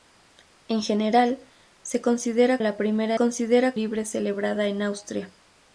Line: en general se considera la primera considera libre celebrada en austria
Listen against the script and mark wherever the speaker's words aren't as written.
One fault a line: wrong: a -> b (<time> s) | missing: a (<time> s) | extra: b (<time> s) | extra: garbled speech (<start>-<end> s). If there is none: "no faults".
no faults